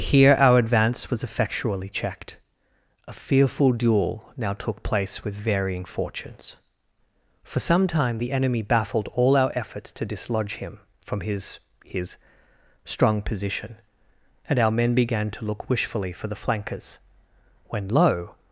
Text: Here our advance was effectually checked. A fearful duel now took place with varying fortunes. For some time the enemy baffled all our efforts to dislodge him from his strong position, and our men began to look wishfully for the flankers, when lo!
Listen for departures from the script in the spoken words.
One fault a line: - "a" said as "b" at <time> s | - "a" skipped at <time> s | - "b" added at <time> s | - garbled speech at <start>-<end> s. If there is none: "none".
- "his" added at 11.8 s